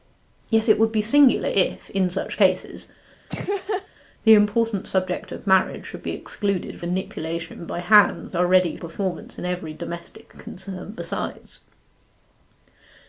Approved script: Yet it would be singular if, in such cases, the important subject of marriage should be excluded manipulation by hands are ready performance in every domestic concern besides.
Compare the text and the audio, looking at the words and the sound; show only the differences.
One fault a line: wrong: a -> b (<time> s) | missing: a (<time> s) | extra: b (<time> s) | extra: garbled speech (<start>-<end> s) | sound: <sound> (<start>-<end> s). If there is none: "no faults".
sound: laugh (3.3-3.9 s)